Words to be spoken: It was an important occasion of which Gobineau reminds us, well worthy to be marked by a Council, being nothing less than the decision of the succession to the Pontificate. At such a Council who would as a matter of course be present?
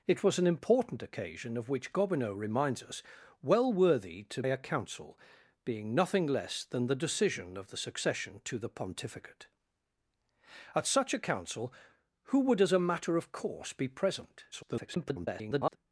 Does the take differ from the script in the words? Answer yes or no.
yes